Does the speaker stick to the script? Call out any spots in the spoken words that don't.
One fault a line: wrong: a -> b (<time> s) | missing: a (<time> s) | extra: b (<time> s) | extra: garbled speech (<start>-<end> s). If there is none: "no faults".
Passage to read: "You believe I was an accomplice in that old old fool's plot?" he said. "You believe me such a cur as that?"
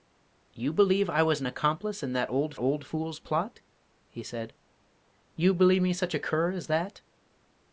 no faults